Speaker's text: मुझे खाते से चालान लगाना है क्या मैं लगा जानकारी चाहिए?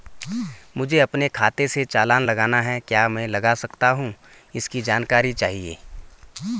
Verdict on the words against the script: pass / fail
fail